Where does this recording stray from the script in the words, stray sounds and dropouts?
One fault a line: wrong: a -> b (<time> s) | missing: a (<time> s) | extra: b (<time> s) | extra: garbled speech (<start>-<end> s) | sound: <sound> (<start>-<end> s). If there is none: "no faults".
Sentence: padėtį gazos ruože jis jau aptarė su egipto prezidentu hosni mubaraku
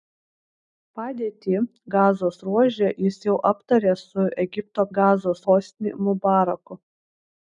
wrong: prezidentu -> gazos (5.0 s)